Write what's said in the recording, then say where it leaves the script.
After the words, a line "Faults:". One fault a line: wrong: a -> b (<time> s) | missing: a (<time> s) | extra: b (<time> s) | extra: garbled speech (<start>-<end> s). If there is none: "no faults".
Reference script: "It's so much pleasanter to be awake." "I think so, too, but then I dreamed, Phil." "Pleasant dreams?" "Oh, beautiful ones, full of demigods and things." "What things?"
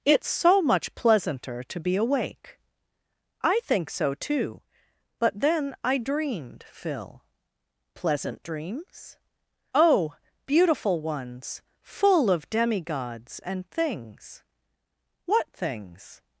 "It's so much pleasanter to be awake." "I think so, too, but then I dreamed, Phil." "Pleasant dreams?" "Oh, beautiful ones, full of demigods and things." "What things?"
Faults:
no faults